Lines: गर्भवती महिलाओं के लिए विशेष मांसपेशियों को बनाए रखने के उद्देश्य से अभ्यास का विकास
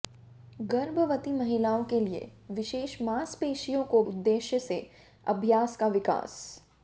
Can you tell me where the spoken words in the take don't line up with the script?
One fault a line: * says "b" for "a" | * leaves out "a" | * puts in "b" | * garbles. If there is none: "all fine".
* leaves out "बनाए रखने के"